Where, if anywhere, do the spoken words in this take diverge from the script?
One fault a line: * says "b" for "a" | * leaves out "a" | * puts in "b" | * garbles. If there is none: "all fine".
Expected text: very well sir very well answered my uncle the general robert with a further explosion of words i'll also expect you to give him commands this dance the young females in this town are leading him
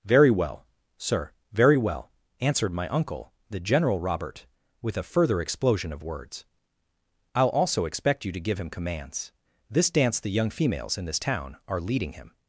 all fine